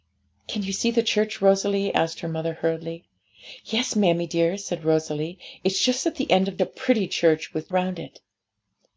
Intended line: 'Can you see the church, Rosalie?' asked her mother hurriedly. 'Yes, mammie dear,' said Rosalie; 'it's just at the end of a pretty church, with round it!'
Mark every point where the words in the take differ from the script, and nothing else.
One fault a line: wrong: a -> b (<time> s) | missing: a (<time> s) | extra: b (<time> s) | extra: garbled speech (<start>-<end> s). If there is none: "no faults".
no faults